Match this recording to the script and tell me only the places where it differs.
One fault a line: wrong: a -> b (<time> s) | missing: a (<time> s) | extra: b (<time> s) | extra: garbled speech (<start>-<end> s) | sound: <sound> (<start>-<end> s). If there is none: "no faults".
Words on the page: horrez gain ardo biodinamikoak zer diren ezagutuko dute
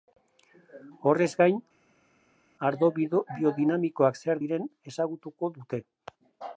no faults